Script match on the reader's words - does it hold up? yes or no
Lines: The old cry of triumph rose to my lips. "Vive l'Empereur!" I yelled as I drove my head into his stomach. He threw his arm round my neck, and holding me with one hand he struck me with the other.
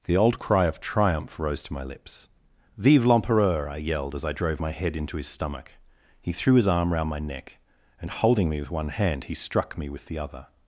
yes